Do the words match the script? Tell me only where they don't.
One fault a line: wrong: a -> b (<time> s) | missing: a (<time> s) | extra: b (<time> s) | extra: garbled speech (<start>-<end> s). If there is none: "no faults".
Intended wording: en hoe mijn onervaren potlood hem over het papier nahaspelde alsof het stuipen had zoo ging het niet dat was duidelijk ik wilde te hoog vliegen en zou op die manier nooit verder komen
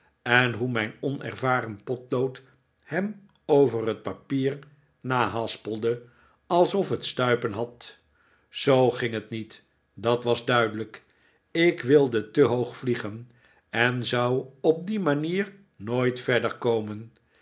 no faults